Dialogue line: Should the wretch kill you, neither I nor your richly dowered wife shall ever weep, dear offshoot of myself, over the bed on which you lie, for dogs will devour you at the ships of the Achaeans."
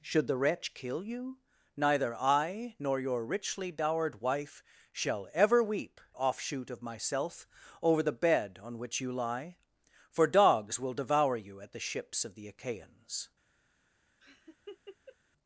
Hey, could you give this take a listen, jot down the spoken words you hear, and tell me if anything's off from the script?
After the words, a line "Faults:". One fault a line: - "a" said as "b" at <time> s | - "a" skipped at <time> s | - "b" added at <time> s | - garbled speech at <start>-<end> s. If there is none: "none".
Should the wretch kill you, neither I nor your richly dowered wife shall ever weep, offshoot of myself, over the bed on which you lie, for dogs will devour you at the ships of the Achaeans."
Faults:
- "dear" skipped at 6.0 s